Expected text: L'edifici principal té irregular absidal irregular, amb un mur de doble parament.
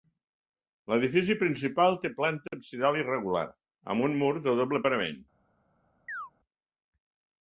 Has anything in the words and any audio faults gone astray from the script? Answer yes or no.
yes